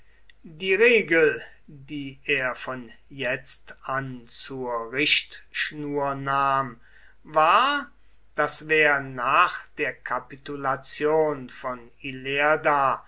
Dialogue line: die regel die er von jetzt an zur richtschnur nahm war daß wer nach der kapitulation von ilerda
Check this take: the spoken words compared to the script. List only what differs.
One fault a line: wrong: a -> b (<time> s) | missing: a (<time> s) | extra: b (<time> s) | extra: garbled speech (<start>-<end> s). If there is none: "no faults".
no faults